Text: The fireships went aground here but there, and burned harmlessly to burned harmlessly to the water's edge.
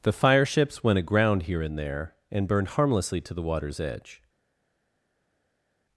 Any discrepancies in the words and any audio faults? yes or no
yes